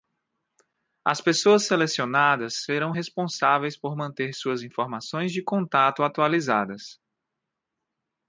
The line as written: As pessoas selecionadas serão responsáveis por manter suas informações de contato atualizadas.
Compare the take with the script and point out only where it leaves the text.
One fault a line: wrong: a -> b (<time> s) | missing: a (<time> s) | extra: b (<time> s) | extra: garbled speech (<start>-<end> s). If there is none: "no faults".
no faults